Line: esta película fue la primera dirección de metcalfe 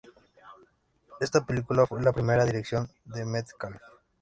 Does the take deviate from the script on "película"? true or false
false